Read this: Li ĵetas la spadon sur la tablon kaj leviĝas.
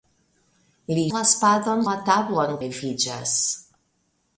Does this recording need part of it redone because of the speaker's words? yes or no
yes